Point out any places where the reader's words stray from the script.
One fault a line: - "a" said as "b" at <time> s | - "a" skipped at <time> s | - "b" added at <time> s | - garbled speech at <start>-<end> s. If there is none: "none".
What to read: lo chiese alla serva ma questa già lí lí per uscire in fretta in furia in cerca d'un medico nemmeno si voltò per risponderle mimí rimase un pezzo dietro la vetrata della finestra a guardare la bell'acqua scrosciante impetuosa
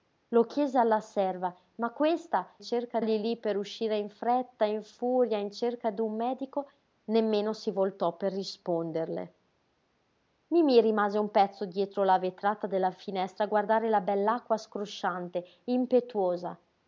- "già" said as "cerca" at 2.6 s